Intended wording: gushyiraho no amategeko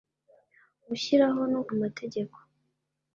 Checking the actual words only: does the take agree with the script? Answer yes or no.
yes